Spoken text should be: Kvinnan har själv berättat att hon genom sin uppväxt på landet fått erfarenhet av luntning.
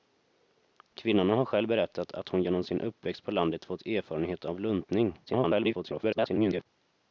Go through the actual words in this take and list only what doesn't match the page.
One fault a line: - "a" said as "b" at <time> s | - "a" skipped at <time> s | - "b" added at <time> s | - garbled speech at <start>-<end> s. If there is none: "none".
- garbled speech at 5.3-6.7 s